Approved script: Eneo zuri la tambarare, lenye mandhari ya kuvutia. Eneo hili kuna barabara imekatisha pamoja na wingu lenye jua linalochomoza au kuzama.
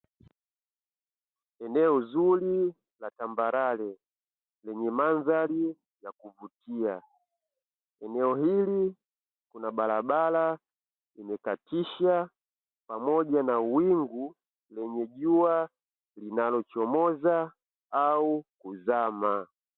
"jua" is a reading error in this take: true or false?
false